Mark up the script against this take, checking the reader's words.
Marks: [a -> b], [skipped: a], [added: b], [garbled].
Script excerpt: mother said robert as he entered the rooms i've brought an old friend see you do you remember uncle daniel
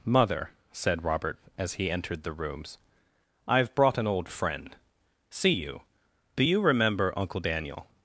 mother said robert as he entered the rooms i've brought an old friend see you do you remember uncle daniel